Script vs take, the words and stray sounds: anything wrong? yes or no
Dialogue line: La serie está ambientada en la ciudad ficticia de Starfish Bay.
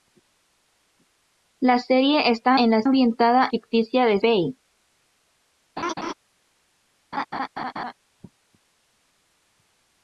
yes